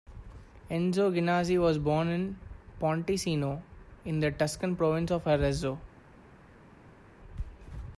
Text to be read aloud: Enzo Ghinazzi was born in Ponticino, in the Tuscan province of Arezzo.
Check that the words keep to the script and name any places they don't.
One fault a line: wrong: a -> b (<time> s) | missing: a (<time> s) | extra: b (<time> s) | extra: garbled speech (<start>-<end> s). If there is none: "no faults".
no faults